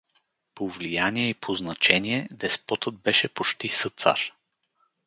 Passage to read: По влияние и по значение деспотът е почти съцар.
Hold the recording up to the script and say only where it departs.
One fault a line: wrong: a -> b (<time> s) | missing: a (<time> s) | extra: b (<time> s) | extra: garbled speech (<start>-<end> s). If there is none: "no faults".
wrong: е -> беше (3.0 s)